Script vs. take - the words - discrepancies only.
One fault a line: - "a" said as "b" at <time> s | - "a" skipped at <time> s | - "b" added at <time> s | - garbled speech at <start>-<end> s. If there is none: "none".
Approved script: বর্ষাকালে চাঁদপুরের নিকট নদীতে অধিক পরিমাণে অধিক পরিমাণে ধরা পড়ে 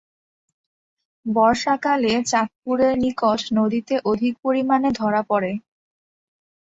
- "অধিক পরিমাণে" skipped at 4.9 s